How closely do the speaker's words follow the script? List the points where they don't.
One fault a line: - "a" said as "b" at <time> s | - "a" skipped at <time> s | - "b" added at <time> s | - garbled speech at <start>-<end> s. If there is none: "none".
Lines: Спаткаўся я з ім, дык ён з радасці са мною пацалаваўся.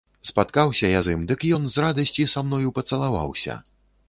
none